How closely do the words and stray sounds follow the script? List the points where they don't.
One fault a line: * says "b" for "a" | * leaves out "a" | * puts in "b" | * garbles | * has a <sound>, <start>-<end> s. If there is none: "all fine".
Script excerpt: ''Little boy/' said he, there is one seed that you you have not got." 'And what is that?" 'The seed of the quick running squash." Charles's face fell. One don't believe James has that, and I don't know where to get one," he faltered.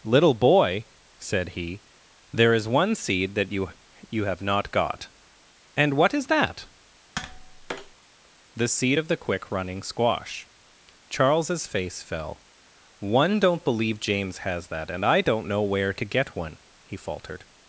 * has a tap, 7.2-8.0 s